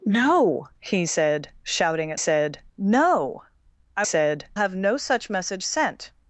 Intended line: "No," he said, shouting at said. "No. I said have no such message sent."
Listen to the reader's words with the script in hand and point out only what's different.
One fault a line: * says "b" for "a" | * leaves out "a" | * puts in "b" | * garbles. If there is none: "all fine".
all fine